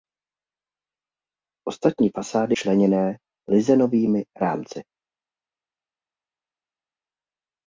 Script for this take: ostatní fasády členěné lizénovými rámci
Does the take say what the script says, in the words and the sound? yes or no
yes